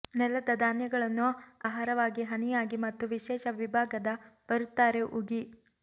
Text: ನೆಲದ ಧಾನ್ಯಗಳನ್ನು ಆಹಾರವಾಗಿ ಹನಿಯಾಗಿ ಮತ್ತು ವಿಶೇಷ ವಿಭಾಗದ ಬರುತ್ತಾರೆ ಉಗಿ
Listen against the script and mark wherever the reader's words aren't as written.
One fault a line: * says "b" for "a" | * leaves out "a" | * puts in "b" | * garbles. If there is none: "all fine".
all fine